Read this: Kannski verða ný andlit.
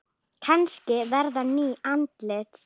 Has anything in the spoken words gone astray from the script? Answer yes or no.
no